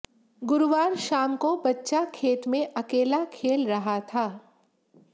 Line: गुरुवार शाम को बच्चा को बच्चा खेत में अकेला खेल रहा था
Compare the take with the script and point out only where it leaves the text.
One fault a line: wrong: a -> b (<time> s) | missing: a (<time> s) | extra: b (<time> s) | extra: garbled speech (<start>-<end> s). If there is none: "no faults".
missing: को बच्चा (2.0 s)